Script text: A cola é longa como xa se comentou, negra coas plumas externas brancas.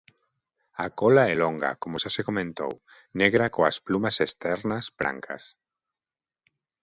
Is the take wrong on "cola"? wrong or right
right